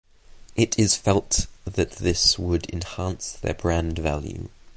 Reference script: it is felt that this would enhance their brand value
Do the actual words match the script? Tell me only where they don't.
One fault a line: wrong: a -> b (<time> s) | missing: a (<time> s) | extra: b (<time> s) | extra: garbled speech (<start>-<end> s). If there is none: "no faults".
no faults